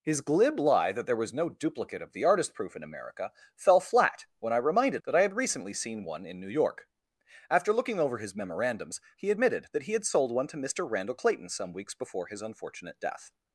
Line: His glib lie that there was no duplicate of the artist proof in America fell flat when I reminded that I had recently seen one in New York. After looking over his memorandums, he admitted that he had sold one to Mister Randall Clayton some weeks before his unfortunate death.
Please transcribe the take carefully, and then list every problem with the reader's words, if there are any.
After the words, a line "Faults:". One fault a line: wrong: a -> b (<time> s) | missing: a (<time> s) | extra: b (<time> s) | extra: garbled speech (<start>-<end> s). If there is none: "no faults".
His glib lie that there was no duplicate of the artist proof in America fell flat when I reminded that I had recently seen one in New York. After looking over his memorandums, he admitted that he had sold one to Mister Randall Clayton some weeks before his unfortunate death.
Faults:
no faults